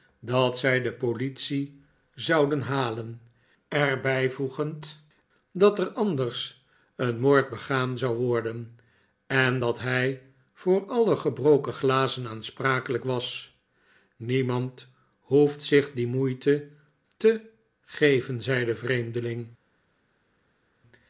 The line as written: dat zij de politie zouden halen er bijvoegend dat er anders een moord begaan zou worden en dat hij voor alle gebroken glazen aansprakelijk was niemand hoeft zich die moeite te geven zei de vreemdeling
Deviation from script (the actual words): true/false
false